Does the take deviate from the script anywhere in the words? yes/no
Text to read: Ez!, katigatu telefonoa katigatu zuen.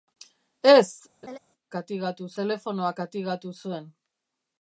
no